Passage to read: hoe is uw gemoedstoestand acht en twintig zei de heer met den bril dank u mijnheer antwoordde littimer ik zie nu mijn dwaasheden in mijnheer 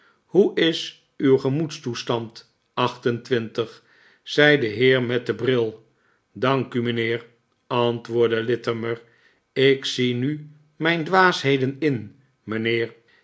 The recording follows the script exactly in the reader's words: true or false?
true